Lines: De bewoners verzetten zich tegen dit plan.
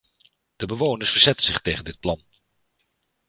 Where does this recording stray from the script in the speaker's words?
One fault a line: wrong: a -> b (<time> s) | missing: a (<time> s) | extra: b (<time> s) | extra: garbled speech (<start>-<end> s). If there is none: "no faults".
no faults